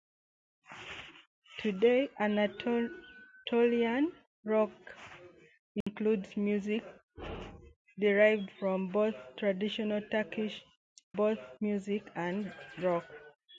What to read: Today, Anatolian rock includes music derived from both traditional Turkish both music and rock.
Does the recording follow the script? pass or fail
pass